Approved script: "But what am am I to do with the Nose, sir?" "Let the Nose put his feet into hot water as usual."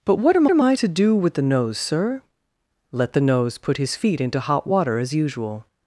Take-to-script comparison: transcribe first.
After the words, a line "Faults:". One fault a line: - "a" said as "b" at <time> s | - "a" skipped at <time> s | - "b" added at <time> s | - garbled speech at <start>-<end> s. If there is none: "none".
"But what am am I to do with the Nose, sir?" "Let the Nose put his feet into hot water as usual."
Faults:
none